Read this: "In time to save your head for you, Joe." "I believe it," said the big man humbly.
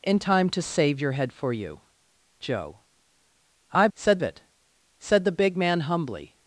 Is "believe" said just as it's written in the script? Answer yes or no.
no